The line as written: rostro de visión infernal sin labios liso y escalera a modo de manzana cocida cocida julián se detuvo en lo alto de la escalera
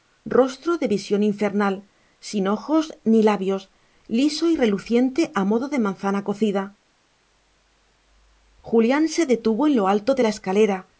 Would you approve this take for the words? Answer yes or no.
no